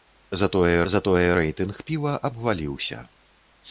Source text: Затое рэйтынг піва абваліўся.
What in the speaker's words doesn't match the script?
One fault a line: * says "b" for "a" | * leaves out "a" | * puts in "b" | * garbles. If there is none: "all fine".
* puts in "затое"